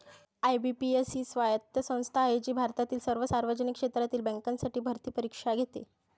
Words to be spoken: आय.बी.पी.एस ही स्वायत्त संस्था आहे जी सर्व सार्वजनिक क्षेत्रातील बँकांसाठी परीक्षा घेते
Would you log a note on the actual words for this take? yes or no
yes